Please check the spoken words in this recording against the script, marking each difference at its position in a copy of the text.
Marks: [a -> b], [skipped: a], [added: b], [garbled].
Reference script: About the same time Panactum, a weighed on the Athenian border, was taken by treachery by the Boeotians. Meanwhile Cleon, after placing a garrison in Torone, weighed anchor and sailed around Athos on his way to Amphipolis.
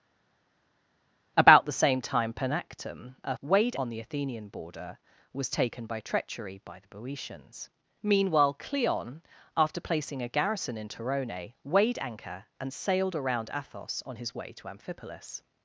About the same time Panactum, a weighed on the Athenian border, was taken by treachery by the Boeotians. Meanwhile Cleon, after placing a garrison in Torone, weighed anchor and sailed around Athos on his way to Amphipolis.